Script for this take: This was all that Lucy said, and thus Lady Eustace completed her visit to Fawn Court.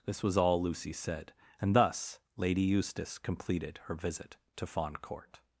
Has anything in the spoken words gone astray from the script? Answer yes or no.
yes